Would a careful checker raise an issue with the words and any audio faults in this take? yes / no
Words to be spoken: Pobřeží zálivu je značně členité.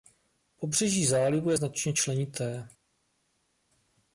no